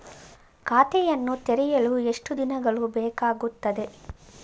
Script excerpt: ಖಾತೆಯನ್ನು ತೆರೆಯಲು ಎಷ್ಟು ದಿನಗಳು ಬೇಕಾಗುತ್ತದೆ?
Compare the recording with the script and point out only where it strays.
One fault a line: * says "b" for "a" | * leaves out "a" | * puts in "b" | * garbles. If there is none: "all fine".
all fine